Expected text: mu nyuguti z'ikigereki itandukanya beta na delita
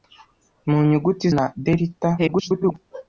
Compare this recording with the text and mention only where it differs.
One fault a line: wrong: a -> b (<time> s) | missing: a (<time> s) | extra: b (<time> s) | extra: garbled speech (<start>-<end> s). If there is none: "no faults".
missing: z'ikigereki itandukanya beta (1.2 s)
extra: garbled speech (2.2-2.8 s)